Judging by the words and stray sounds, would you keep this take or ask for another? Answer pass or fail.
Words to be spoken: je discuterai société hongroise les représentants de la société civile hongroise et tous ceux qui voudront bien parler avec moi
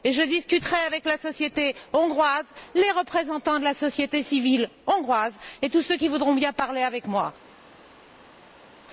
fail